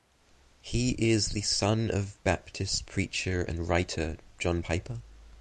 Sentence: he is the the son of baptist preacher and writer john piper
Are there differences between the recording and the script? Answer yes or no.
yes